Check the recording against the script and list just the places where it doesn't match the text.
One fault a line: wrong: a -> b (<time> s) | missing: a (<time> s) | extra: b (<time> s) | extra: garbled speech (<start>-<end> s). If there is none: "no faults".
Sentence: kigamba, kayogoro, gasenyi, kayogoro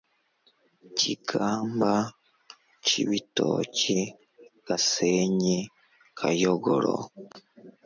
wrong: kayogoro -> cibitoke (2.9 s)